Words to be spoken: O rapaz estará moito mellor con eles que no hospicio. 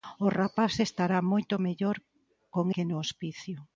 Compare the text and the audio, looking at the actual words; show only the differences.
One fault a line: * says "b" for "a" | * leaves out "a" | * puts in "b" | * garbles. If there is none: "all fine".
* leaves out "eles"